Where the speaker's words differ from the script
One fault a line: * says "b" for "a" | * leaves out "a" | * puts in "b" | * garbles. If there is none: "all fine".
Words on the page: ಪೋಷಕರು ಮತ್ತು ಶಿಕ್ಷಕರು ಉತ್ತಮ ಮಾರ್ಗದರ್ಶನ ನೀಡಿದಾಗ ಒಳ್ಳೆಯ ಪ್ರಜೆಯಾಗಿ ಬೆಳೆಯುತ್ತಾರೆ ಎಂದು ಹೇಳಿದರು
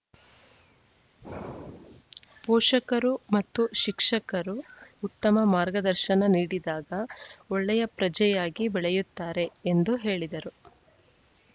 all fine